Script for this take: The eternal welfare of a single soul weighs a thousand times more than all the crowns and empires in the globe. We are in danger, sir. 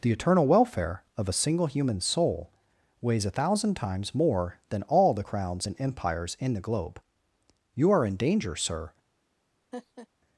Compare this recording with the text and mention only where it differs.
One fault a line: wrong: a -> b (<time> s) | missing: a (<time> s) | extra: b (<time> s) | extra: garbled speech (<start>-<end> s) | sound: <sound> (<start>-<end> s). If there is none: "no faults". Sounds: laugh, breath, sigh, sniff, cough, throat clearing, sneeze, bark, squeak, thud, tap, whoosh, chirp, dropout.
extra: human (1.7 s)
wrong: We -> You (7.7 s)
sound: laugh (9.7-10.1 s)